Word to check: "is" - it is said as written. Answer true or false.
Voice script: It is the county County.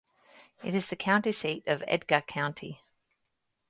true